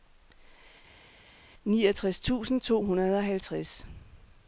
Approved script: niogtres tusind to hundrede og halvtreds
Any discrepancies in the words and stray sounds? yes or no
no